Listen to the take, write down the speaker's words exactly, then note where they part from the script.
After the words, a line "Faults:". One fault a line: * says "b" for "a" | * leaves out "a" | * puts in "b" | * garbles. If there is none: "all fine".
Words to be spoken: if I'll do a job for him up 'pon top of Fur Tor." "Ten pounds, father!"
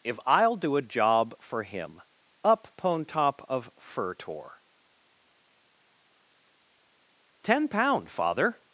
if I'll do a job for him up 'pon top of Fur Tor." "Ten pound, father!"
Faults:
* says "pound" for "pounds"